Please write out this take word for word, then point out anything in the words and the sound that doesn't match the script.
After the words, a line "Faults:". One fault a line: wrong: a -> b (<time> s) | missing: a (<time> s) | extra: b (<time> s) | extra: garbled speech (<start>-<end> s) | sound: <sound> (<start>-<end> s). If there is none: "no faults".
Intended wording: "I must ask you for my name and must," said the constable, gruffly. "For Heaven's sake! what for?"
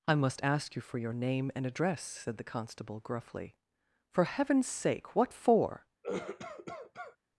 "I must ask you for your name and address," said the constable, gruffly. "For Heaven's sake! what for?"
Faults:
wrong: my -> your (1.0 s)
wrong: must -> address (1.6 s)
sound: cough (6.0-7.2 s)